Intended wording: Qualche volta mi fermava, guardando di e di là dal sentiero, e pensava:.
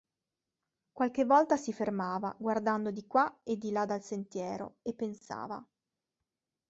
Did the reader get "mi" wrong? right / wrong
wrong